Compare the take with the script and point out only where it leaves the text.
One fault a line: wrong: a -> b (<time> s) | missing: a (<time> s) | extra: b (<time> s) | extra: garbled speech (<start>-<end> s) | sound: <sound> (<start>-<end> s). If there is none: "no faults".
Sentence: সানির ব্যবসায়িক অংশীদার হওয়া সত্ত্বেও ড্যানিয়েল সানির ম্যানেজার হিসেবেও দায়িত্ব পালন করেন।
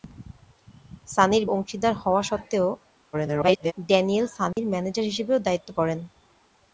missing: ব্যবসায়িক (1.4 s)
extra: garbled speech (3.1-3.7 s)
sound: dropout (4.5-4.6 s)
missing: পালন (5.7 s)